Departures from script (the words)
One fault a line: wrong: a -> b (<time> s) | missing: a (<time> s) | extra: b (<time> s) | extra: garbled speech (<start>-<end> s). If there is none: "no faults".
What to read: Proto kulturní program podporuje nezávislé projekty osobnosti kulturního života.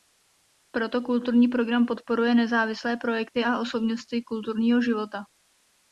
extra: a (3.4 s)